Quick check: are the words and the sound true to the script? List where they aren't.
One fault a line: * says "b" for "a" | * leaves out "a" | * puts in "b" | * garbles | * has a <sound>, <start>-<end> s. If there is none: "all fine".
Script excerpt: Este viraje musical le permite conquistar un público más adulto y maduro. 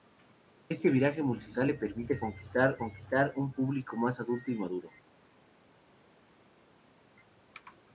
* puts in "conquistar"